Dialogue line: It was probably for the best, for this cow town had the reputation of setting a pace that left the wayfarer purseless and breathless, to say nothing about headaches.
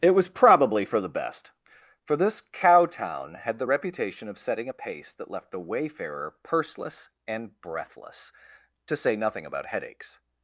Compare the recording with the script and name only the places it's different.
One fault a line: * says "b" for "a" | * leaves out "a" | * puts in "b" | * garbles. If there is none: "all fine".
all fine